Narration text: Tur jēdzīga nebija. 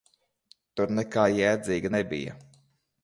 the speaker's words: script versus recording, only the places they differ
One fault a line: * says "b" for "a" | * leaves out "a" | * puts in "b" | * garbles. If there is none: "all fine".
* puts in "nekā"